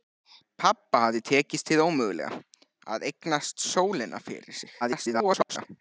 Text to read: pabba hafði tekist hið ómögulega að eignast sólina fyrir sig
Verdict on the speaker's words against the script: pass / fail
fail